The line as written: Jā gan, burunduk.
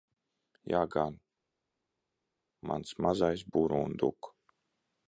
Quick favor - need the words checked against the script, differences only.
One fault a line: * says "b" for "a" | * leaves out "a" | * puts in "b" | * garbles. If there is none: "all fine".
* puts in "mans mazais"